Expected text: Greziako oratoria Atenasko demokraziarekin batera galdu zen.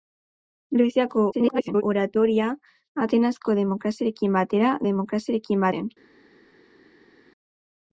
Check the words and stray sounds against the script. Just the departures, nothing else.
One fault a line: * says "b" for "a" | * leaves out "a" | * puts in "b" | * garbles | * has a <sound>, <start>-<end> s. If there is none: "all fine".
* garbles
* says "demokraziarekin" for "galdu"